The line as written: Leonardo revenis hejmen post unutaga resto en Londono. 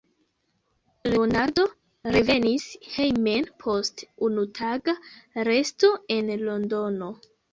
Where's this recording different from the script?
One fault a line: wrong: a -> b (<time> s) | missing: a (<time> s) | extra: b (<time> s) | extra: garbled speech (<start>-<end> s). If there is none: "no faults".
no faults